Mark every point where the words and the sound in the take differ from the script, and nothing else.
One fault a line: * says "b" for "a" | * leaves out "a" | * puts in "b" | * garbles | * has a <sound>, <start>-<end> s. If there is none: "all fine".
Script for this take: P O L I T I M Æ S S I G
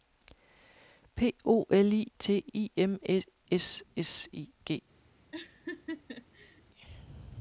* has a laugh, 5.3-6.6 s